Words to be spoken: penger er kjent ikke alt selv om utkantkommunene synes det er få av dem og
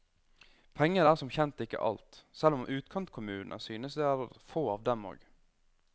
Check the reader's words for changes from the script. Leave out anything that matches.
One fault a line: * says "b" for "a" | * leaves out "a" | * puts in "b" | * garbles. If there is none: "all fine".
* puts in "som"